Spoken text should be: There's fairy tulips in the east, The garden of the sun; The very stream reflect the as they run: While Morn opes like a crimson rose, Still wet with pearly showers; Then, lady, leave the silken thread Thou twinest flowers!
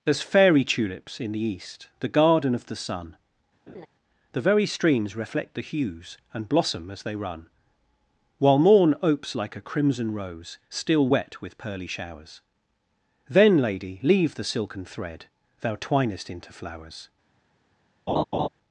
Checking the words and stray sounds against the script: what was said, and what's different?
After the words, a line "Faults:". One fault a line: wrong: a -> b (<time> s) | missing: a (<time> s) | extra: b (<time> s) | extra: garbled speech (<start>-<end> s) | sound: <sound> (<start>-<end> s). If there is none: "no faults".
There's fairy tulips in the east, The garden of the sun; The very streams reflect the hues, And blossom as they run: While Morn opes like a crimson rose, Still wet with pearly showers; Then, lady, leave the silken thread Thou twinest into flowers!
Faults:
sound: laugh (3.7-3.9 s)
wrong: stream -> streams (4.7 s)
extra: hues And blossom (5.6 s)
extra: into (16.3 s)
sound: laugh (18.1-18.5 s)